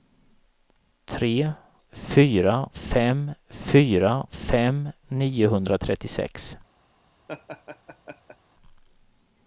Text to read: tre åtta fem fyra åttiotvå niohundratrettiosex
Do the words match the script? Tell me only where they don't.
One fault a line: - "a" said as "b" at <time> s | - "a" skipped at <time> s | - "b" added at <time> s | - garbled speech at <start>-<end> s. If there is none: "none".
- "åtta" said as "fyra" at 1.9 s
- "åttiotvå" said as "fem" at 4.3 s